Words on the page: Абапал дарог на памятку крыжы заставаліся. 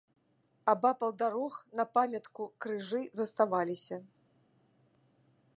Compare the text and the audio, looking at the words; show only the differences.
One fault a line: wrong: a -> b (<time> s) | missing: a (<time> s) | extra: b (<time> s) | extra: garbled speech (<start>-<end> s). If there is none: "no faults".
no faults